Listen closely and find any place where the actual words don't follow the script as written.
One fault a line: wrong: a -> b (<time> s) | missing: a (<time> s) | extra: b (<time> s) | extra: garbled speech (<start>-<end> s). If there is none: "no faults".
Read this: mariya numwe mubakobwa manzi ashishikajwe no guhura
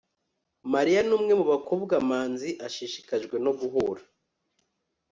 no faults